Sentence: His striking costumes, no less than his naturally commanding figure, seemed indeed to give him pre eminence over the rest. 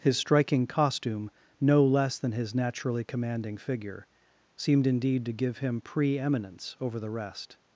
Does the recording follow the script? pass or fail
fail